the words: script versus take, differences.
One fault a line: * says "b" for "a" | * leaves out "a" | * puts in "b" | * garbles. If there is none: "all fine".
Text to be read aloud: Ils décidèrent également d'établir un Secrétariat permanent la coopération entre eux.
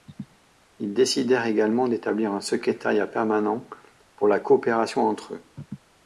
* puts in "pour"